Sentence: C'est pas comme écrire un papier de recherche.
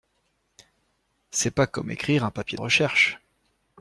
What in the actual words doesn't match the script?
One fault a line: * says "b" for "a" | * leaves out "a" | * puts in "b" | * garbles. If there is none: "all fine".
all fine